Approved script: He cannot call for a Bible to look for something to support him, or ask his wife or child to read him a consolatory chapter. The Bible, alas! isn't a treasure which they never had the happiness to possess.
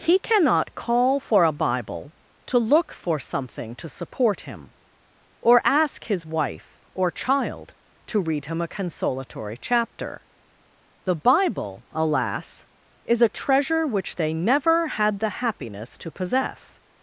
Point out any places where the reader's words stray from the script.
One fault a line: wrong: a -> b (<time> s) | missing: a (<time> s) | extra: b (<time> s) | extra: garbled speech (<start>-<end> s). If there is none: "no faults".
wrong: isn't -> is (13.0 s)